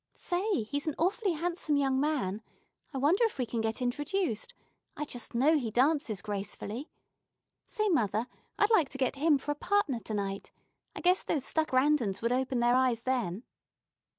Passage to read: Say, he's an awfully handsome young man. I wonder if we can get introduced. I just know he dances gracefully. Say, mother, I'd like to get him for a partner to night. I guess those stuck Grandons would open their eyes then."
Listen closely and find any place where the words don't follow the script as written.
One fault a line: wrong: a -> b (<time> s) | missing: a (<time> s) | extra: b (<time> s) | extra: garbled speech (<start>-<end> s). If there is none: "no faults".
no faults